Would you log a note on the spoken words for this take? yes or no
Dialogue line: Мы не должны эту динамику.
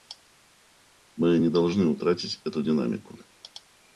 yes